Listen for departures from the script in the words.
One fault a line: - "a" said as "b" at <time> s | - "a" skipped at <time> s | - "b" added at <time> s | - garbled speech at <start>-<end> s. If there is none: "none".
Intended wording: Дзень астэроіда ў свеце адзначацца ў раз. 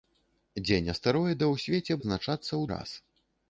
none